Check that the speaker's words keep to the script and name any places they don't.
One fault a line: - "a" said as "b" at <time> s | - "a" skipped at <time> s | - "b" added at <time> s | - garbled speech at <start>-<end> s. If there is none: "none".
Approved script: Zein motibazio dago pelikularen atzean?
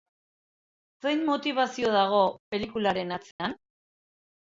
none